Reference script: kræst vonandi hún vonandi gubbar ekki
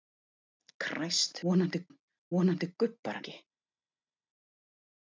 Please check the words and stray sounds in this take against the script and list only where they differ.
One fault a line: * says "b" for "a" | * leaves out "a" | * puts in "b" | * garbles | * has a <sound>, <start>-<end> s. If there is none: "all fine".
all fine